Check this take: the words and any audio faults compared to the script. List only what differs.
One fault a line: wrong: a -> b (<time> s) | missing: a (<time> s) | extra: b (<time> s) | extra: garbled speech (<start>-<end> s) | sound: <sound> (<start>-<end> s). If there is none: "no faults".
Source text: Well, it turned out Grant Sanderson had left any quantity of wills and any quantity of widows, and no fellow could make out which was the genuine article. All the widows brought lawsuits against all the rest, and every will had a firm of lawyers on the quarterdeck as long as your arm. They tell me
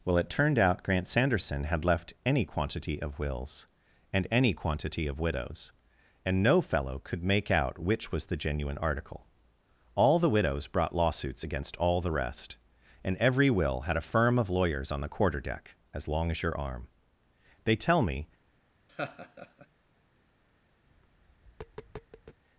sound: laugh (18.9-19.7 s)
sound: tap (20.9-22.4 s)